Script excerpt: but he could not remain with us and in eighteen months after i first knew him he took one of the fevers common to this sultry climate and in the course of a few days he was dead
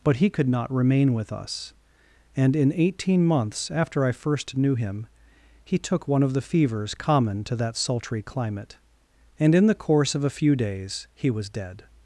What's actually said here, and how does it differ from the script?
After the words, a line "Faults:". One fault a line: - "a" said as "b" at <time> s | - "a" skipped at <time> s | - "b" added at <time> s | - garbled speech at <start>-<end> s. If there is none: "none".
but he could not remain with us and in eighteen months after i first knew him he took one of the fevers common to that sultry climate and in the course of a few days he was dead
Faults:
- "this" said as "that" at 7.6 s